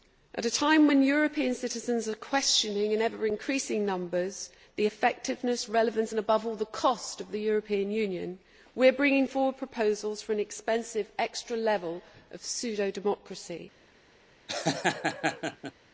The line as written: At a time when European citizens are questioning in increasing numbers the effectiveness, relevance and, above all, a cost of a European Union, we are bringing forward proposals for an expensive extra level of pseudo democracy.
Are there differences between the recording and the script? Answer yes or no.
yes